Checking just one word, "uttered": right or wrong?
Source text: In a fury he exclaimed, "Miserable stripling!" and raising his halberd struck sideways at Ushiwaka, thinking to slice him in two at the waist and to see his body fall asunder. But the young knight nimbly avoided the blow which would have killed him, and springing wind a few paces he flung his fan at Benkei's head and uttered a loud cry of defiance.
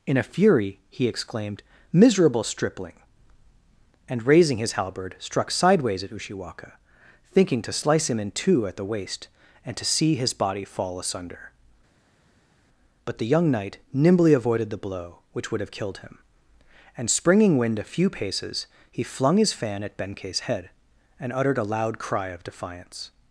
right